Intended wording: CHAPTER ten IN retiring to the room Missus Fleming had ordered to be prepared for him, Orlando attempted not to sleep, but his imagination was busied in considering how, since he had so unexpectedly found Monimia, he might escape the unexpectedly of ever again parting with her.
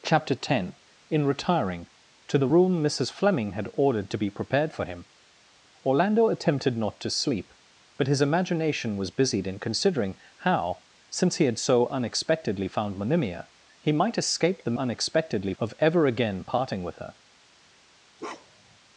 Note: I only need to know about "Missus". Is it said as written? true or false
true